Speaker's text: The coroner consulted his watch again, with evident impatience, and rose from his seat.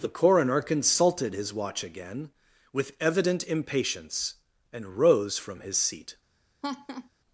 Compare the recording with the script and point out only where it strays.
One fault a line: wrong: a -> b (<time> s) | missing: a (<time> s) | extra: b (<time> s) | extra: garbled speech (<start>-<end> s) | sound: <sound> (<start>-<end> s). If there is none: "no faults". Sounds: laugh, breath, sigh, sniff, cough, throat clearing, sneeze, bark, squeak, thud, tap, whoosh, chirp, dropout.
sound: laugh (6.6-7.1 s)